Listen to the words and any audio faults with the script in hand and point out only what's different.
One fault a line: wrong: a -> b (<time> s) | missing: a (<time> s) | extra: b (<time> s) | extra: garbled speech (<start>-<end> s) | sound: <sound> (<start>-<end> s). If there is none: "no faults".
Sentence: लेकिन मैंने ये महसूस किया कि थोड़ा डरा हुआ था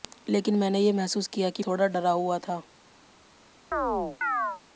sound: chirp (3.7-4.6 s)